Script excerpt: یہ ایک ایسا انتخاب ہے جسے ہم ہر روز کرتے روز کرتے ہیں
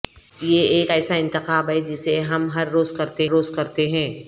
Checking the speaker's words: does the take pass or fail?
pass